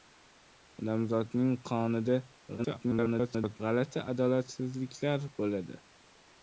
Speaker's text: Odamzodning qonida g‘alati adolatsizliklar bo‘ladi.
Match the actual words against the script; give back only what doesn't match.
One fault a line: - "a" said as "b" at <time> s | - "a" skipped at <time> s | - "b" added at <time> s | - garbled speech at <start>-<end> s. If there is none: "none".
- garbled speech at 2.6-3.6 s